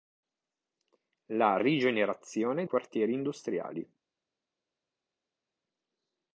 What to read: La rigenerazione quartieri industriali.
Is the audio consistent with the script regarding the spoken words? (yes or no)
yes